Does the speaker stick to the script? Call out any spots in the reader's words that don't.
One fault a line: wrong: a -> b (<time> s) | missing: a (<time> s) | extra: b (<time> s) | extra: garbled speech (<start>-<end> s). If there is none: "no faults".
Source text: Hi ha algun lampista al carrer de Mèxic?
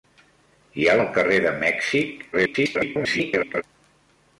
missing: algun lampista (0.9 s)
extra: garbled speech (2.3-3.6 s)